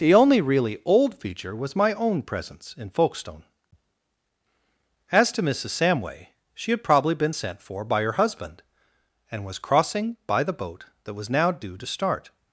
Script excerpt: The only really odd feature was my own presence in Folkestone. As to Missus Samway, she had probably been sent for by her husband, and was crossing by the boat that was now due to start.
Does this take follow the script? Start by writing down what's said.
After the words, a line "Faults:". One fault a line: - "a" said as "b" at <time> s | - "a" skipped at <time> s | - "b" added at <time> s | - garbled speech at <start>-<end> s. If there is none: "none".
The only really old feature was my own presence in Folkestone. As to Missus Samway, she had probably been sent for by her husband, and was crossing by the boat that was now due to start.
Faults:
- "odd" said as "old" at 0.8 s